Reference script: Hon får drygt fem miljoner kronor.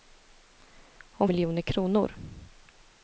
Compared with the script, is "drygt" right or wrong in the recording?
wrong